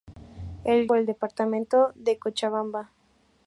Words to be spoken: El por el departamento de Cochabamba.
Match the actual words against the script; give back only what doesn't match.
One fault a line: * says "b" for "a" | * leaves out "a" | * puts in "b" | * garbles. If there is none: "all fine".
all fine